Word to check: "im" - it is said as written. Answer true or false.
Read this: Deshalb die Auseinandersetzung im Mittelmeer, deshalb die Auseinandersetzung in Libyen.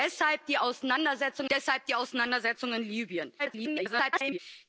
false